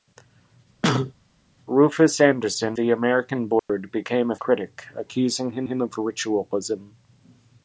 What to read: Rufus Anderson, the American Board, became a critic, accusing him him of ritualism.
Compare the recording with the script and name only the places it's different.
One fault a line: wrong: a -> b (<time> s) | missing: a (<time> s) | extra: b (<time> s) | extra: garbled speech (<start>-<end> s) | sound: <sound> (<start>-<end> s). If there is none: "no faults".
sound: cough (0.8-1.1 s)
sound: dropout (3.6-3.7 s)